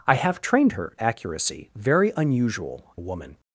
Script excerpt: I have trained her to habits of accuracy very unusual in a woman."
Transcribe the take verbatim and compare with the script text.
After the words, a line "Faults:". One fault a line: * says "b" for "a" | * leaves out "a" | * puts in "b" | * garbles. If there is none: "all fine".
I have trained her accuracy very unusual a woman."
Faults:
* leaves out "to habits of"
* leaves out "in"